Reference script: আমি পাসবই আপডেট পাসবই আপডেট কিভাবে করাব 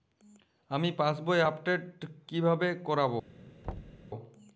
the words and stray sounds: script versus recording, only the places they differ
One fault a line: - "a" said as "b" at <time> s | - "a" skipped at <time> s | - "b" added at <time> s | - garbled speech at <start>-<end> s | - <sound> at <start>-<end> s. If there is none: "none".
- "পাসবই আপডেট" skipped at 1.8 s
- thud at 3.6-4.1 s